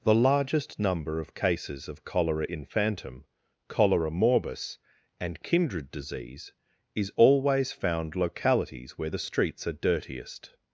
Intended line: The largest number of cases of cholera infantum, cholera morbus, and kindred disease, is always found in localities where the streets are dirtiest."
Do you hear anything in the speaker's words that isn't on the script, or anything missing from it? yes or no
yes